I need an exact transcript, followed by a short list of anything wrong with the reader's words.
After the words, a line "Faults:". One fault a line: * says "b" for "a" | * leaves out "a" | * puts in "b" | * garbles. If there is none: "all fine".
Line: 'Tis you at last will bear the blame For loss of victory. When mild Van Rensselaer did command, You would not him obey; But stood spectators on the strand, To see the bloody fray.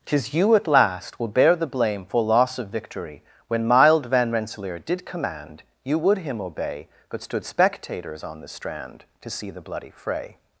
'Tis you at last will bear the blame For loss of victory. When mild Van Rensselaer did command, You would him obey; But stood spectators on the strand, To see the bloody fray.
Faults:
* leaves out "not"